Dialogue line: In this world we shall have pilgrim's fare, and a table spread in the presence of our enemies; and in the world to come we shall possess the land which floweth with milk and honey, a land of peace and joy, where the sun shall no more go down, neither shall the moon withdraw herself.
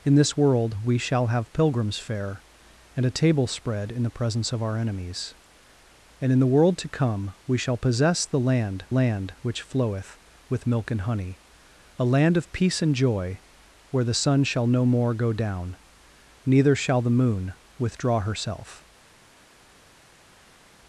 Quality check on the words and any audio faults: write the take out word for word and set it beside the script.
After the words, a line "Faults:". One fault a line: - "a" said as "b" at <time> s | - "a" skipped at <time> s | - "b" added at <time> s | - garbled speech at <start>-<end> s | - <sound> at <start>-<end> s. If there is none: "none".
In this world we shall have pilgrim's fare, and a table spread in the presence of our enemies; and in the world to come we shall possess the land land which floweth with milk and honey, a land of peace and joy, where the sun shall no more go down, neither shall the moon withdraw herself.
Faults:
- "land" added at 8.9 s